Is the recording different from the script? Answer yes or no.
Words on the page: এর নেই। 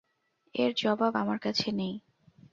yes